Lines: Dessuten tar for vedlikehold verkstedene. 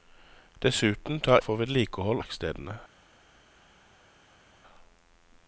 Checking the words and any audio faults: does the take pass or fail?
pass